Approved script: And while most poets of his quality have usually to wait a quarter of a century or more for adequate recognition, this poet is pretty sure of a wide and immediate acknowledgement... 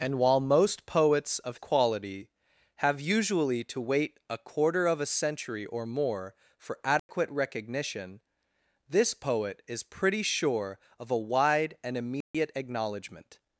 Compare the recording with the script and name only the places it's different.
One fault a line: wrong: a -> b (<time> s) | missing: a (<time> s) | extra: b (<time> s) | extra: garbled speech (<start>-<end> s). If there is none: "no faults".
missing: his (1.6 s)